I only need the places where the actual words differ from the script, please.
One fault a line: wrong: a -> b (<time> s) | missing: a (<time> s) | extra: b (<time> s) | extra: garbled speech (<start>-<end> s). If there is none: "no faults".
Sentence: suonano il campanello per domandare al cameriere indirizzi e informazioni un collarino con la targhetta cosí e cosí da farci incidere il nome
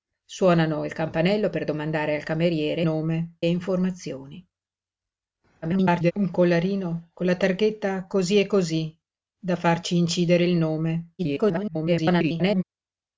wrong: indirizzi -> nome (2.8 s)
extra: garbled speech (5.6-6.1 s)
extra: garbled speech (11.2-12.6 s)